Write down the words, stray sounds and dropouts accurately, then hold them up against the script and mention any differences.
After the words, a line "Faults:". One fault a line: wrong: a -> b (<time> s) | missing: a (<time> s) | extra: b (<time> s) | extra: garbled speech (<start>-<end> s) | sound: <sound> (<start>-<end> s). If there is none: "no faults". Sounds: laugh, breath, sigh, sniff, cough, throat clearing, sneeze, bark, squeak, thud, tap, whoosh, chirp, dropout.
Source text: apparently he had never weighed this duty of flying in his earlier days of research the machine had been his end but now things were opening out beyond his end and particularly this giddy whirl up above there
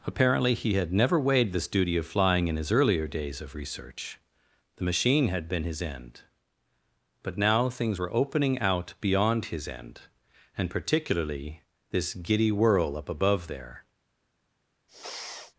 apparently he had never weighed this duty of flying in his earlier days of research the machine had been his end but now things were opening out beyond his end and particularly this giddy whirl up above there
Faults:
sound: sniff (14.9-15.5 s)